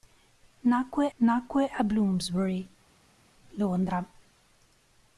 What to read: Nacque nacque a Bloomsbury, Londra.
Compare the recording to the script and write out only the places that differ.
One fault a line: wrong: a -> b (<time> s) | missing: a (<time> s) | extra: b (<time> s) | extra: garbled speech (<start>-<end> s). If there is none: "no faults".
no faults